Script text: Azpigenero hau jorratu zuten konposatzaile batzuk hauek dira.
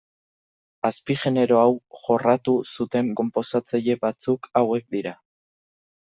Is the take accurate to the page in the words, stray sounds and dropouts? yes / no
yes